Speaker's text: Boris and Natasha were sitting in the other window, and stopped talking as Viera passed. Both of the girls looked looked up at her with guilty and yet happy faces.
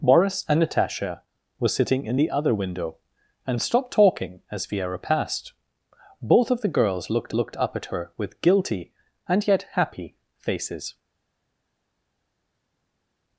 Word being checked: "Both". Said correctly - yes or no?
yes